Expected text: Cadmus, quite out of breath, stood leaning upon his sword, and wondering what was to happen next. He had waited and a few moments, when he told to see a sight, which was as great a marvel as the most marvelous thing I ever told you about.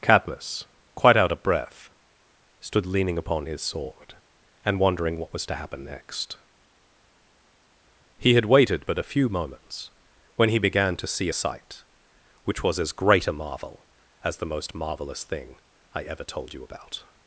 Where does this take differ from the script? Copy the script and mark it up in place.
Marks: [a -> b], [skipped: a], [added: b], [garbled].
Cadmus, quite out of breath, stood leaning upon his sword, and wondering what was to happen next. He had waited [and -> but] a few moments, when he [told -> began] to see a sight, which was as great a marvel as the most marvelous thing I ever told you about.